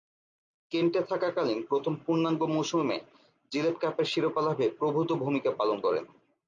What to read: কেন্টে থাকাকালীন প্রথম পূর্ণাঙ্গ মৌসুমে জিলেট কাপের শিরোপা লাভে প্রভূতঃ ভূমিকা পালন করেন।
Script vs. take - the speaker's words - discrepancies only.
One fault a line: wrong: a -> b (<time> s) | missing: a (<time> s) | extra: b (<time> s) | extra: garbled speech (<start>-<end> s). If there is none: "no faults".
no faults